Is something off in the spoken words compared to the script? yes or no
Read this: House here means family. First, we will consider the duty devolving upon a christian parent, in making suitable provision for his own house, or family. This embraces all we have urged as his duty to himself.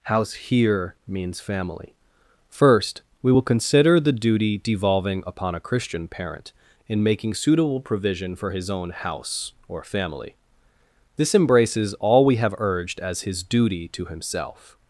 no